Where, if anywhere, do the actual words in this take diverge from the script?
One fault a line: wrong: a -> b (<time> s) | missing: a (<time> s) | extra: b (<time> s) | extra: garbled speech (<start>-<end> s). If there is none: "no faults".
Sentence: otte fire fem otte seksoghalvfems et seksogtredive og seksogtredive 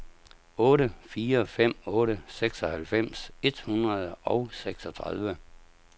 wrong: seksogtredive -> hundrede (3.7 s)